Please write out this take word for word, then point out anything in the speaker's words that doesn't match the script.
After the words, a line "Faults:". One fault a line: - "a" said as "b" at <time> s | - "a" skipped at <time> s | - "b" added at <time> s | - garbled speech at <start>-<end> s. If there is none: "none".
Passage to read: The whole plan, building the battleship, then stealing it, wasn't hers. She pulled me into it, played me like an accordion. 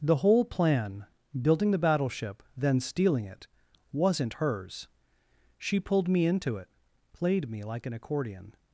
The whole plan, building the battleship, then stealing it, wasn't hers. She pulled me into it, played me like an accordion.
Faults:
none